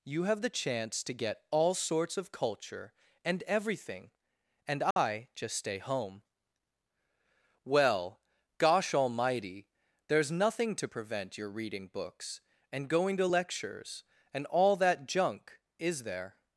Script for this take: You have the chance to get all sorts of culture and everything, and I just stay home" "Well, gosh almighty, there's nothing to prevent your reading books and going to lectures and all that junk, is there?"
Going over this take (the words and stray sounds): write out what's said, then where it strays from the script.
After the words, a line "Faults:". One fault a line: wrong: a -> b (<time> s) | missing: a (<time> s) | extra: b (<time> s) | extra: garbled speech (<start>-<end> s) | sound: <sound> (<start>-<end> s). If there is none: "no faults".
You have the chance to get all sorts of culture and everything, and I just stay home" "Well, gosh almighty, there's nothing to prevent your reading books and going to lectures and all that junk, is there?"
Faults:
sound: dropout (4.9-5.0 s)